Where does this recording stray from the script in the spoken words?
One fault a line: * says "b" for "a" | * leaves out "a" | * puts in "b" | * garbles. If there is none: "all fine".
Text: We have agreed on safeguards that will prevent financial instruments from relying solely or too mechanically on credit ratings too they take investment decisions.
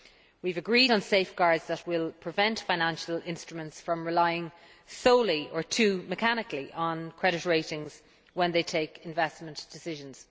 * says "when" for "too"